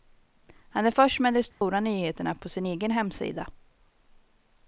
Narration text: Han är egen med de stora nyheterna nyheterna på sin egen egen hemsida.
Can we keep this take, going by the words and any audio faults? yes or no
no